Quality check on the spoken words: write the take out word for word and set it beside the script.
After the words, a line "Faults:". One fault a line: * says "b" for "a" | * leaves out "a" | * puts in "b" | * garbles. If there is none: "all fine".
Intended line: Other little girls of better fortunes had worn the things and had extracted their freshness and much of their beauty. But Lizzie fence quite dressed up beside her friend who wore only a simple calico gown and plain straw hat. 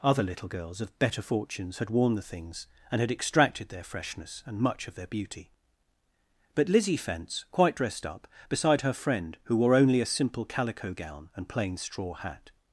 Other little girls of better fortunes had worn the things and had extracted their freshness and much of their beauty. But Lizzie fence quite dressed up beside her friend who wore only a simple calico gown and plain straw hat.
Faults:
all fine